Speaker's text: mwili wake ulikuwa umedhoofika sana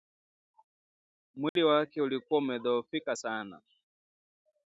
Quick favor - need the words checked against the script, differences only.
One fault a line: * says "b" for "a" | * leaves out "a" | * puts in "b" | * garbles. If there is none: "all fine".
all fine